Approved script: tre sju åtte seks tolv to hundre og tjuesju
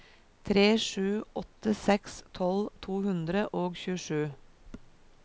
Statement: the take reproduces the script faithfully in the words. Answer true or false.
true